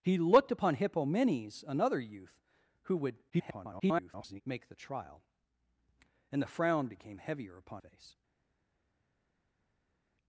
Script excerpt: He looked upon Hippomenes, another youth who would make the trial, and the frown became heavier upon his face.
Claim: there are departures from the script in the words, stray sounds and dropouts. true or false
true